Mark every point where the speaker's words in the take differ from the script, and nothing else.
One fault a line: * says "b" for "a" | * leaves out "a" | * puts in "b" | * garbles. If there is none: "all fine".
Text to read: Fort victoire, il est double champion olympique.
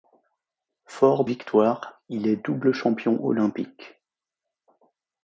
all fine